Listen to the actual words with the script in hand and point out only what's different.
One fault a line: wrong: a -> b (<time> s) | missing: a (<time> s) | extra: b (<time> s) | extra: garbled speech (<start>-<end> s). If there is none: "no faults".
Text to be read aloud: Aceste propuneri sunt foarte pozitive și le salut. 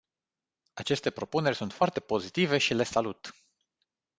no faults